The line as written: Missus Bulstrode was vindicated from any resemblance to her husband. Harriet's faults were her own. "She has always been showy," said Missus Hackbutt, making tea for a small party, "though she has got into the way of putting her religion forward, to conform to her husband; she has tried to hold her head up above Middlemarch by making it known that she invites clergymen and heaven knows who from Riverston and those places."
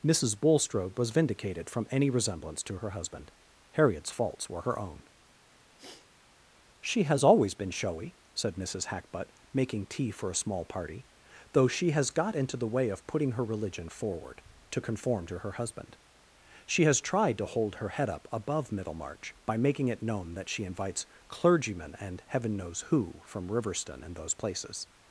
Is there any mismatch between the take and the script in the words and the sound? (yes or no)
yes